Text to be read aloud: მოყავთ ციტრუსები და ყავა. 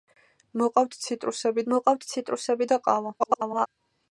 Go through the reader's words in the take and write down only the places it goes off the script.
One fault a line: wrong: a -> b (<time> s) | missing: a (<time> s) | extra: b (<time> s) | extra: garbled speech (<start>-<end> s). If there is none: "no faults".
extra: მოყავთ ციტრუსები (1.7 s)
extra: garbled speech (3.2-3.7 s)